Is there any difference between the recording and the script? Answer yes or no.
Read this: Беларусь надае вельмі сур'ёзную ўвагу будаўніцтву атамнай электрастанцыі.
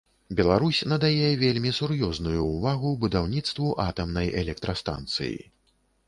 no